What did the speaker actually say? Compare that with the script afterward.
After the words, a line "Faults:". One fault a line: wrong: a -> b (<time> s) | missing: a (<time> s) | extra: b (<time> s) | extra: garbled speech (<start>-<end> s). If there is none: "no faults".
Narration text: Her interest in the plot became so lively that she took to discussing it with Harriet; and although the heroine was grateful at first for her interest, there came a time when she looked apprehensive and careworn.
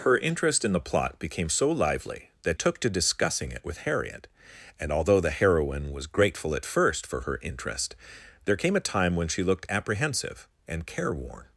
Her interest in the plot became so lively that took to discussing it with Harriet; and although the heroine was grateful at first for her interest, there came a time when she looked apprehensive and careworn.
Faults:
missing: she (2.6 s)